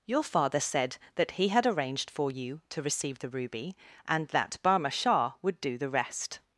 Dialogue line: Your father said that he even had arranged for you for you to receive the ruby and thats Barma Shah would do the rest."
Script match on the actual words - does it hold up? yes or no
no